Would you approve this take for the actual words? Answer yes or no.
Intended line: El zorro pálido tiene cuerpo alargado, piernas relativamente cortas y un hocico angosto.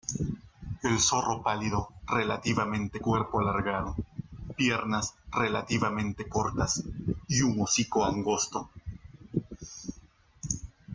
no